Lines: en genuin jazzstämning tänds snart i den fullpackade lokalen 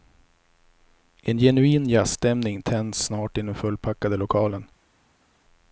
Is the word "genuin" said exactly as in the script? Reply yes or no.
yes